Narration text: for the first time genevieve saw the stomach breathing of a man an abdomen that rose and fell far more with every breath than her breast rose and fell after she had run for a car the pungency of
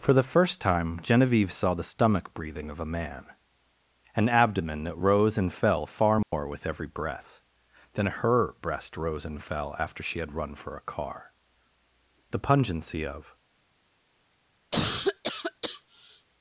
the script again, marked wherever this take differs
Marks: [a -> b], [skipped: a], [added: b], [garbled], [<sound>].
for the first time genevieve saw the stomach breathing of a man an abdomen that rose and fell far more [dropout] with every breath than her breast rose and fell after she had run for a car the pungency of [cough]